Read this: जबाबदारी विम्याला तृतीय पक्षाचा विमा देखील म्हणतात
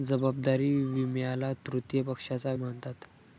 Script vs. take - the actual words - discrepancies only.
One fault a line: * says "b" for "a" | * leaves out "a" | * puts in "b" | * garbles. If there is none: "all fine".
* leaves out "विमा देखील"